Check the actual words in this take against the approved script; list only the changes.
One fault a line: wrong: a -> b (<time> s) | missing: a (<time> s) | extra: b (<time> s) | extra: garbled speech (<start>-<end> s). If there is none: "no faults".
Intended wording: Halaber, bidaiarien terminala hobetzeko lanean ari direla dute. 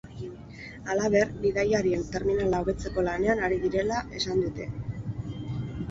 extra: esan (4.2 s)